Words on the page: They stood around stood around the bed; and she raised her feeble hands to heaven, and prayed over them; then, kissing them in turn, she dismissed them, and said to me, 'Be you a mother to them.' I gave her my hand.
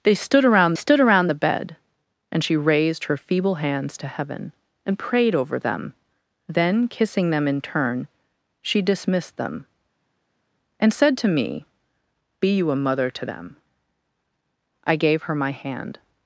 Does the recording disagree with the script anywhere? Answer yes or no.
no